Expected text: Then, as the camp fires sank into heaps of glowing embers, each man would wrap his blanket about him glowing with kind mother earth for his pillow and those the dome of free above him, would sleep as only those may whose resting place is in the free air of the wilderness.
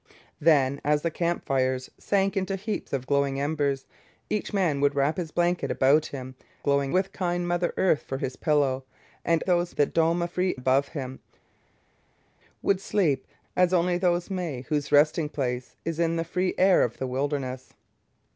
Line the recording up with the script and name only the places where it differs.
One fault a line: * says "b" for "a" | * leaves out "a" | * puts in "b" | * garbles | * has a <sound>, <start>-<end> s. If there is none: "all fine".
all fine